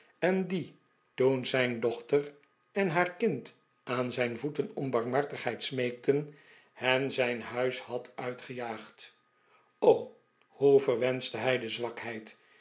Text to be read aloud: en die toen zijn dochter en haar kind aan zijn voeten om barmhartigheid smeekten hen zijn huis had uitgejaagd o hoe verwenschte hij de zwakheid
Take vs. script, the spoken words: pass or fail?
pass